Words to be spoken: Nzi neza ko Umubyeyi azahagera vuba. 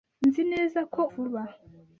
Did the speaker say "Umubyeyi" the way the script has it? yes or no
no